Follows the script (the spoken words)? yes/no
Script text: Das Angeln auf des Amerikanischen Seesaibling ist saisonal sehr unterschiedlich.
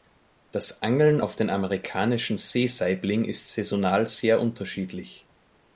no